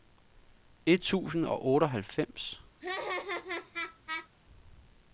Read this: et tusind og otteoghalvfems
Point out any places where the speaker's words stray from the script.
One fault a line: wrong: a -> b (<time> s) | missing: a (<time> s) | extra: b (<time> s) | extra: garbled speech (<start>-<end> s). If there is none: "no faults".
no faults